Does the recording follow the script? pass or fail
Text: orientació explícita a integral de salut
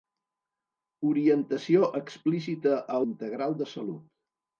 pass